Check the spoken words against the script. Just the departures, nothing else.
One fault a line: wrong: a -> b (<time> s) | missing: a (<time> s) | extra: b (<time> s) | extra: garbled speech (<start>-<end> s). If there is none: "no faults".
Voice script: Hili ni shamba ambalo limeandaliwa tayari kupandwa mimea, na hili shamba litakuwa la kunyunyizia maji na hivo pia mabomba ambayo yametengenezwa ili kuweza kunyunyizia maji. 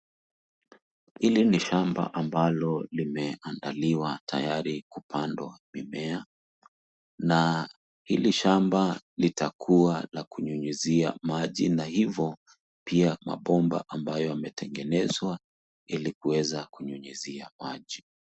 no faults